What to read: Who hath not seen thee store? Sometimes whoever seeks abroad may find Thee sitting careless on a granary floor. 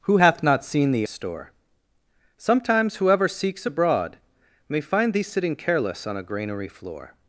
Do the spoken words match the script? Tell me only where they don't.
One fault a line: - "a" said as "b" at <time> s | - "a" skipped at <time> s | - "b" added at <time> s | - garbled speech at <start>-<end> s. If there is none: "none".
none